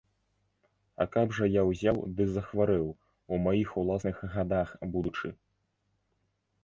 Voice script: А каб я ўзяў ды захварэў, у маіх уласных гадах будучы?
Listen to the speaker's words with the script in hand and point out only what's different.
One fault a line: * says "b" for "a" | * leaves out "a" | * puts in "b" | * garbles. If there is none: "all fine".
* puts in "жа"